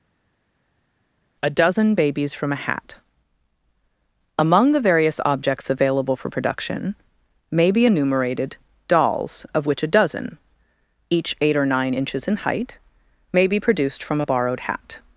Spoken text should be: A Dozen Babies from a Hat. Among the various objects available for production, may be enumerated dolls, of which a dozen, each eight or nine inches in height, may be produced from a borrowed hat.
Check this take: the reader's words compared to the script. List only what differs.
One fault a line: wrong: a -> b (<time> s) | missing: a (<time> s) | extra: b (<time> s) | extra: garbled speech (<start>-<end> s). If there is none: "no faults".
no faults